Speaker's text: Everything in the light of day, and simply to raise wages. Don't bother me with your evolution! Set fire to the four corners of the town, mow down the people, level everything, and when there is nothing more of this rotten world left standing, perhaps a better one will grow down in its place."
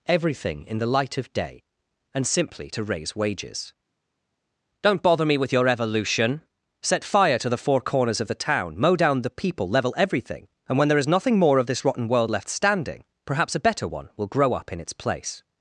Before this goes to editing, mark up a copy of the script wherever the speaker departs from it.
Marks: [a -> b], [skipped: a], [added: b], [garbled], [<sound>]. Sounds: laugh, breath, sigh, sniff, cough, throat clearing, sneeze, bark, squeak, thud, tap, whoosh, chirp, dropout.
Everything in the light of day, and simply to raise wages. Don't bother me with your evolution! Set fire to the four corners of the town, mow down the people, level everything, and when there is nothing more of this rotten world left standing, perhaps a better one will grow [down -> up] in its place."